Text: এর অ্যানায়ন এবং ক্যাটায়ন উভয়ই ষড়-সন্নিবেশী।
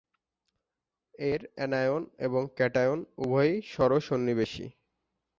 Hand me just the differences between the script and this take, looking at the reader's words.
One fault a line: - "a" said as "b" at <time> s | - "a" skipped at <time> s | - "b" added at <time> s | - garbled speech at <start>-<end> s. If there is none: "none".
none